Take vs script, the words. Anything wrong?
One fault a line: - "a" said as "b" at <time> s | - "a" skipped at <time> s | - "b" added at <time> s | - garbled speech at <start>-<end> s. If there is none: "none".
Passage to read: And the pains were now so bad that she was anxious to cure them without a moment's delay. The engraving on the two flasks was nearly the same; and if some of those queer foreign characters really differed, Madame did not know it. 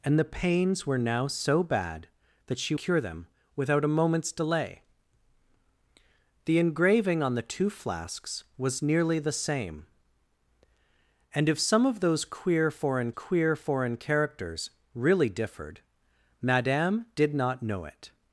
- "was anxious to" skipped at 2.8 s
- "queer foreign" added at 13.1 s